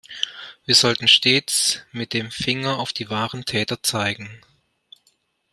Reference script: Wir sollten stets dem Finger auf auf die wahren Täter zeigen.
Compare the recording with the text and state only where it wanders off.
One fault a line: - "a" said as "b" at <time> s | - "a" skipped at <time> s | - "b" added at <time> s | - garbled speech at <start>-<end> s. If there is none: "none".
- "mit" added at 1.9 s
- "auf" skipped at 2.9 s